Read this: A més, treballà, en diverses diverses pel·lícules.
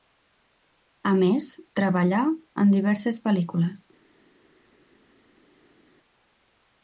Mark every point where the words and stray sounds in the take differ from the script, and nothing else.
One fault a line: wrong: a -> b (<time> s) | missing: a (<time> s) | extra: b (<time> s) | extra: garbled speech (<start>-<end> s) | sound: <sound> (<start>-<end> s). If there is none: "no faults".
missing: diverses (3.2 s)